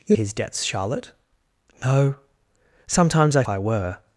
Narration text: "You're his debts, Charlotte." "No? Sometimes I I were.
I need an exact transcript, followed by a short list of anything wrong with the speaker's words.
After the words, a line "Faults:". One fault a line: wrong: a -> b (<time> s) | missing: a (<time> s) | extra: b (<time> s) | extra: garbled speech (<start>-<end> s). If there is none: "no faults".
"You're his debts, Charlotte." "No? Sometimes I I were.
Faults:
no faults